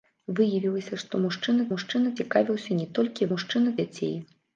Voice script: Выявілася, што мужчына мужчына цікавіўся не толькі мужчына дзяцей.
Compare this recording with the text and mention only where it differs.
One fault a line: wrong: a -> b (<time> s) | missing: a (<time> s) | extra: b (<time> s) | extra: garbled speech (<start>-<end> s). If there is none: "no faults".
no faults